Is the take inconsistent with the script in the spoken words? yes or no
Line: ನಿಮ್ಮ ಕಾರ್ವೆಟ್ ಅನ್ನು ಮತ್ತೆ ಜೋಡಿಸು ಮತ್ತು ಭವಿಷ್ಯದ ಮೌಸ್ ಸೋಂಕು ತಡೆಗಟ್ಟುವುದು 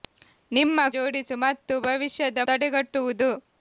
yes